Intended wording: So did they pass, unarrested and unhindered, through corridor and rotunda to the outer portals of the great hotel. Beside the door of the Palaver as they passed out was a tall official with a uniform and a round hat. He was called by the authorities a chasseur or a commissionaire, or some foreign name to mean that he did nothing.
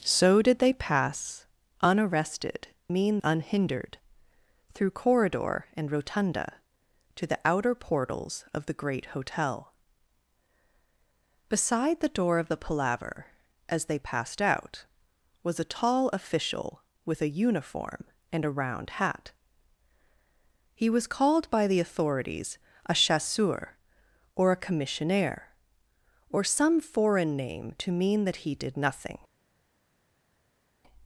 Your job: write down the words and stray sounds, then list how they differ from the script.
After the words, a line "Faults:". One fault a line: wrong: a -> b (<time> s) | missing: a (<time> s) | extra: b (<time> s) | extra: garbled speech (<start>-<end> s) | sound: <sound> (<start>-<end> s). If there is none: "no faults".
So did they pass, unarrested mean unhindered, through corridor and rotunda to the outer portals of the great hotel. Beside the door of the Palaver as they passed out was a tall official with a uniform and a round hat. He was called by the authorities a chasseur or a commissionaire, or some foreign name to mean that he did nothing.
Faults:
wrong: and -> mean (2.9 s)